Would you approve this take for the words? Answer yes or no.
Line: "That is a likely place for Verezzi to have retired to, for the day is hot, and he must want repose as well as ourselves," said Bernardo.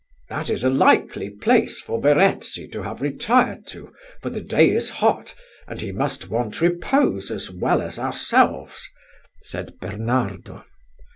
yes